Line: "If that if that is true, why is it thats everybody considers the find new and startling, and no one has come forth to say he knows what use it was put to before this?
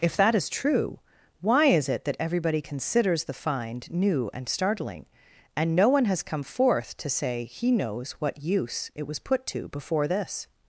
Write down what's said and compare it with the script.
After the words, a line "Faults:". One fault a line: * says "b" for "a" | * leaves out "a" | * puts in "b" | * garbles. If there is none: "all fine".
"If that is true, why is it that everybody considers the find new and startling, and no one has come forth to say he knows what use it was put to before this?
Faults:
* leaves out "if that"
* says "that" for "thats"